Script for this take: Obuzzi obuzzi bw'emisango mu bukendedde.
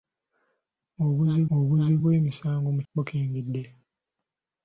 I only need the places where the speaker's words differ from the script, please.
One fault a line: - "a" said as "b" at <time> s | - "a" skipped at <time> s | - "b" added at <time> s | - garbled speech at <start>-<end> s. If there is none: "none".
none